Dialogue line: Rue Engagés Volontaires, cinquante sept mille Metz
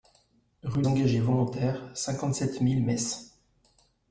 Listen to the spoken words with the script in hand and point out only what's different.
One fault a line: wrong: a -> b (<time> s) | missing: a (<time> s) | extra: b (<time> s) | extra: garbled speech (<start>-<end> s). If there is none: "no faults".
no faults